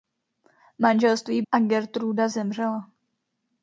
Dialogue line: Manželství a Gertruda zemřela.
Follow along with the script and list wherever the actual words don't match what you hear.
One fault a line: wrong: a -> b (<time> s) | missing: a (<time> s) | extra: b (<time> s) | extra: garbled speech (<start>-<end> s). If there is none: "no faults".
no faults